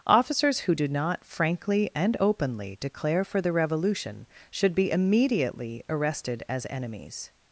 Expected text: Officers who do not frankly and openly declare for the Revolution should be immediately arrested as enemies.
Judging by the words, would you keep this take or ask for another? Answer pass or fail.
pass